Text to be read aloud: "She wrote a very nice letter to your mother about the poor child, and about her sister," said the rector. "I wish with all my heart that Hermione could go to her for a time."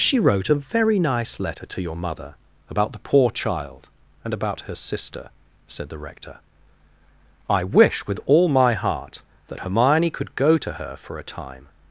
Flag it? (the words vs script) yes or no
no